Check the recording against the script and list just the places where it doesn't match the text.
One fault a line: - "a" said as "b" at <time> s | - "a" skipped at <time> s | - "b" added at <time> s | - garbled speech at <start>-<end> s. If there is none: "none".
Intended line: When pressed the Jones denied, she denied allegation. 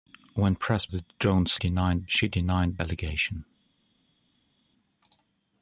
none